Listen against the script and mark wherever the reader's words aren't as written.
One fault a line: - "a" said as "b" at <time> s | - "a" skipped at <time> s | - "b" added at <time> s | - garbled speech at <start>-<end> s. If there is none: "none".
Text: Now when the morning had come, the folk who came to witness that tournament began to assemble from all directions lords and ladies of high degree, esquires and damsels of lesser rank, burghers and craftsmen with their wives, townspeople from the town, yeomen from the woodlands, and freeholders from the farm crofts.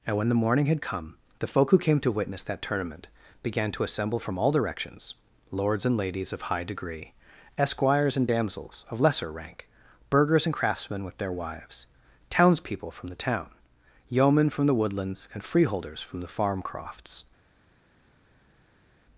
- "Now" said as "And" at 0.1 s